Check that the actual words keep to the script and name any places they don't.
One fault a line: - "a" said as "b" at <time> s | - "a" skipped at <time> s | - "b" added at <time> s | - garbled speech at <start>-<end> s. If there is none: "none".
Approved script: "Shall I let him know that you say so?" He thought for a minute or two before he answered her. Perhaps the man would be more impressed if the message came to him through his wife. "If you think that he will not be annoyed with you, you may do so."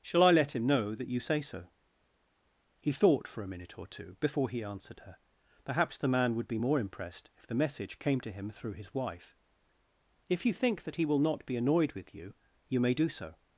none